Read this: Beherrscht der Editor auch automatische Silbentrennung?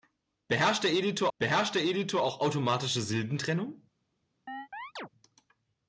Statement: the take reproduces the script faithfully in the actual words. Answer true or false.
false